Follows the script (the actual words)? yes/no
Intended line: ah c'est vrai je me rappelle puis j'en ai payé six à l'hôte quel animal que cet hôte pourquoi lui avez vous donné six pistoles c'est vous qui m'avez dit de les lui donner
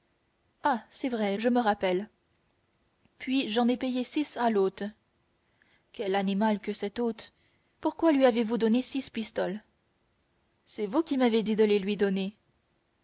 yes